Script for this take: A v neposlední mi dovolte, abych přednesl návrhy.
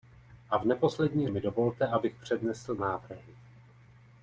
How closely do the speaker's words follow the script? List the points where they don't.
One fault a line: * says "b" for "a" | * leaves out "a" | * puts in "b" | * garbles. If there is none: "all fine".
all fine